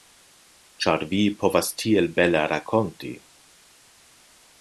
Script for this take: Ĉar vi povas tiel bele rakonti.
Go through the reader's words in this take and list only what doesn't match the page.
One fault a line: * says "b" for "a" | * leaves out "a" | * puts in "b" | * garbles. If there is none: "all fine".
all fine